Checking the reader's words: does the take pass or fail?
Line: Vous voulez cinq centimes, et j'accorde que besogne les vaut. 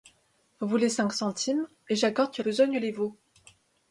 pass